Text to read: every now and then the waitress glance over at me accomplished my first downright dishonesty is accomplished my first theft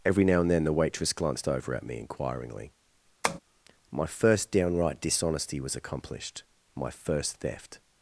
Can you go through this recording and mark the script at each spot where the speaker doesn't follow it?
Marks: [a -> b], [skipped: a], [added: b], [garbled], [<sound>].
every now and then the waitress [glance -> glanced] over at me [accomplished -> inquiringly] [tap] my first downright dishonesty [is -> was] accomplished my first theft